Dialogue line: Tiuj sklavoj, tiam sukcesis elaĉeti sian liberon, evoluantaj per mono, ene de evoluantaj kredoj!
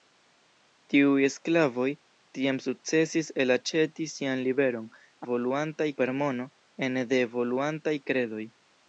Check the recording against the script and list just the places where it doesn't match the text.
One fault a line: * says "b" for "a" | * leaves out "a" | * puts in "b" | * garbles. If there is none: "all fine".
all fine